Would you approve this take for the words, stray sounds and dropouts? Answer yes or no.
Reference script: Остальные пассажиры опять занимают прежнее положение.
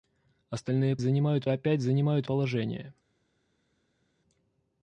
no